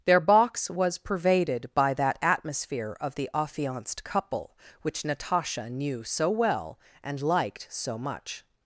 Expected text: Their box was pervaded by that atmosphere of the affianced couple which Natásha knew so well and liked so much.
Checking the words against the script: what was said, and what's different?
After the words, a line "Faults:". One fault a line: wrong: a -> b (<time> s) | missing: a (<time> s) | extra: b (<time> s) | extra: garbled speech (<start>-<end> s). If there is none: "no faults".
Their box was pervaded by that atmosphere of the affianced couple which Natásha knew so well and liked so much.
Faults:
no faults